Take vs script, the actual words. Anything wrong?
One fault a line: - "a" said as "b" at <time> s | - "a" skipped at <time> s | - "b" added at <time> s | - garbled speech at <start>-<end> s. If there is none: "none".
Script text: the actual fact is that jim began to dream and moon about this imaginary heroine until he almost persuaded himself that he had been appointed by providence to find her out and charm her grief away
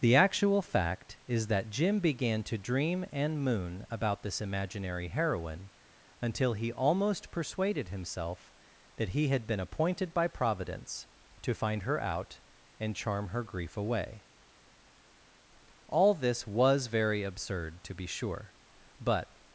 - "all this was very absurd to be sure but" added at 15.9 s